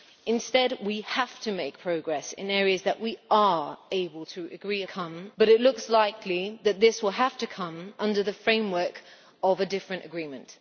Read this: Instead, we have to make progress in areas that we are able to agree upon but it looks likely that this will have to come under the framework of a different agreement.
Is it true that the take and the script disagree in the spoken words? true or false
true